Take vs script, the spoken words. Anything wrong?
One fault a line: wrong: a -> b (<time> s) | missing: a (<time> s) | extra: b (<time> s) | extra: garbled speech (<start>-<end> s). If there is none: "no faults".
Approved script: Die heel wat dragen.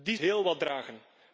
no faults